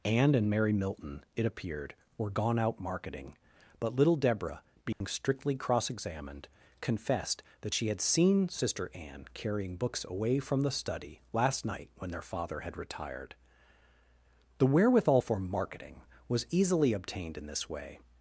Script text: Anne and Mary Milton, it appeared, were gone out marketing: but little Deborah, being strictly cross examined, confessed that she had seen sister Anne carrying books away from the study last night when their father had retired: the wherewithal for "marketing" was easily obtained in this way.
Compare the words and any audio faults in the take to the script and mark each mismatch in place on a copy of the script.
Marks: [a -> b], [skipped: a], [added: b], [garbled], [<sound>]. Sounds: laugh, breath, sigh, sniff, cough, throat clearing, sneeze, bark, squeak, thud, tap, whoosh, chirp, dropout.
Anne and Mary Milton, it appeared, were gone out marketing: but little Deborah, being [dropout] strictly cross examined, confessed that she had seen sister Anne carrying books away from the study last night when their father had retired: the wherewithal for "marketing" was easily obtained in this way.